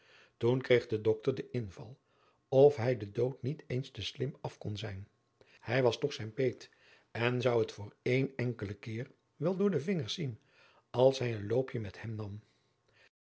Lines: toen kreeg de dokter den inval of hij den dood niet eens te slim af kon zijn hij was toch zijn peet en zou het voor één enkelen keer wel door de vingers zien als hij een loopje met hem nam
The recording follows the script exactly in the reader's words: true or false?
true